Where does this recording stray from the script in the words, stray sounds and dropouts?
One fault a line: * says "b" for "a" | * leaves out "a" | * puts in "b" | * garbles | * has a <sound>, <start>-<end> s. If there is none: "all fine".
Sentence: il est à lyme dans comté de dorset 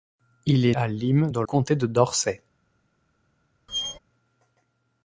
* has a squeak, 3.7-4.0 s